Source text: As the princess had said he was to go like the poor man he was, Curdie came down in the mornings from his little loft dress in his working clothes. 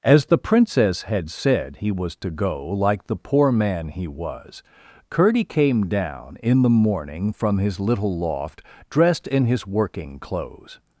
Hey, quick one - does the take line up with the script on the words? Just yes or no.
no